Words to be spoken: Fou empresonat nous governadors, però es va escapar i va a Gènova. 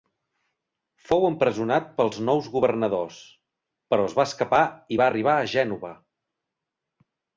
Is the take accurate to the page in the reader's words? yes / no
no